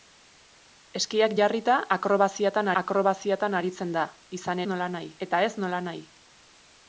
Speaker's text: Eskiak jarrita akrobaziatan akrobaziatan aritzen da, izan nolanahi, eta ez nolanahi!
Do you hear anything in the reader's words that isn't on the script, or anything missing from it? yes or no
no